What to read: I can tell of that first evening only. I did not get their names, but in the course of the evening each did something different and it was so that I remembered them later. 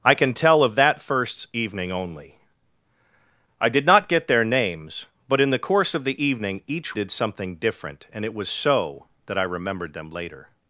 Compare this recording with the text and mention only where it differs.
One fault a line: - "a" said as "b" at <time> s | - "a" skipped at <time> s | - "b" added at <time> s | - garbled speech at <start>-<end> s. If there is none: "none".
none